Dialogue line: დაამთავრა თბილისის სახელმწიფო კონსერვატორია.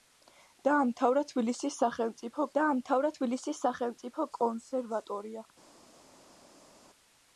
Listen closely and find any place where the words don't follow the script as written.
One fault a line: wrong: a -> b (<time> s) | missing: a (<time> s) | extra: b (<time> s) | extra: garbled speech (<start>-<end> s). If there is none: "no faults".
extra: დაამთავრა თბილისის სახელმწიფო (2.6 s)